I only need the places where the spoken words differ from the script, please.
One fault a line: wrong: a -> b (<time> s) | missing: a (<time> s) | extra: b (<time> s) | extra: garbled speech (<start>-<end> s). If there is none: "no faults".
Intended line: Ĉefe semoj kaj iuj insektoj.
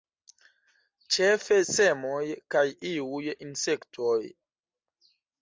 no faults